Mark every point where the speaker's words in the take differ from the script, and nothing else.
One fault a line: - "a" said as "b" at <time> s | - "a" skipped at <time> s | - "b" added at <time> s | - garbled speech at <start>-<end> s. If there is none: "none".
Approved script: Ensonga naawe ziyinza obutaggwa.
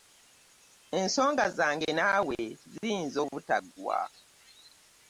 - "zange" added at 1.6 s